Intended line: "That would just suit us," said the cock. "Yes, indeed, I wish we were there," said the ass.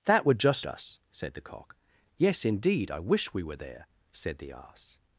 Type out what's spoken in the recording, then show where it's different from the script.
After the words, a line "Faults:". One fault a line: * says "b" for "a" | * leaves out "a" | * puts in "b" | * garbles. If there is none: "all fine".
"That would just us," said the cock. "Yes, indeed, I wish we were there," said the ass.
Faults:
* leaves out "suit"